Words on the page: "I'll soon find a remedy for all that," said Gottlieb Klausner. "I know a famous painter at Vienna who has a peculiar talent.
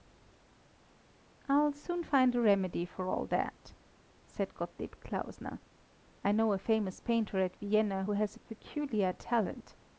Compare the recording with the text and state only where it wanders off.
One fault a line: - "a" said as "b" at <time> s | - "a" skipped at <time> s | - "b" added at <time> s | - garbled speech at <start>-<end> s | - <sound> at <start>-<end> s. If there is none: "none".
none